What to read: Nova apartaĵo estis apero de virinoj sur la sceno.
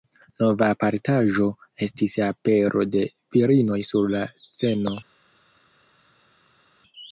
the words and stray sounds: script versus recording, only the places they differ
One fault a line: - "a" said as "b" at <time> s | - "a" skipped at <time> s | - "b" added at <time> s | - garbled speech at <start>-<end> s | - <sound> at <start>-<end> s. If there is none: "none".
none